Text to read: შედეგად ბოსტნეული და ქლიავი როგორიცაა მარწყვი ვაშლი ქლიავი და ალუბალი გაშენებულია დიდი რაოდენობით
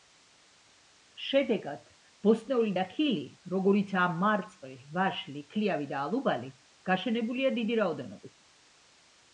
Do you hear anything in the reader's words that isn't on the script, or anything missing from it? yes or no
yes